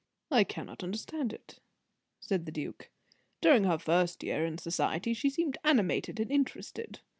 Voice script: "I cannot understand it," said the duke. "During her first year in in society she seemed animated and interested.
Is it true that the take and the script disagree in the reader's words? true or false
true